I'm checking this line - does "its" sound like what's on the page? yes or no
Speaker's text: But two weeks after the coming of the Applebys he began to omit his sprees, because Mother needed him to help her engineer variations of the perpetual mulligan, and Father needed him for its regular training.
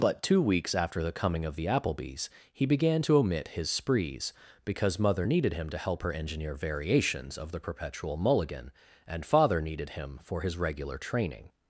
no